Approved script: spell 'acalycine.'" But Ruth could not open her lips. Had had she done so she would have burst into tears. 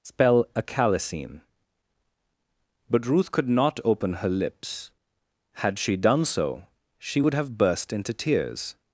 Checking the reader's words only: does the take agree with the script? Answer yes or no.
no